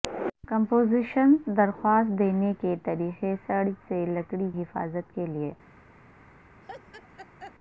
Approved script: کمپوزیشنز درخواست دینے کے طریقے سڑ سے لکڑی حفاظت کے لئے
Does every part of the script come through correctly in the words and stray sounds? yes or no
no